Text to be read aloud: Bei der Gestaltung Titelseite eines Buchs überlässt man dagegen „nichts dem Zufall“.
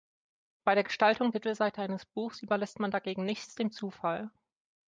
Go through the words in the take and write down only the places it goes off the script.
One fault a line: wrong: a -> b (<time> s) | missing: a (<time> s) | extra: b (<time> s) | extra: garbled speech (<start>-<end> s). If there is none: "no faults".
no faults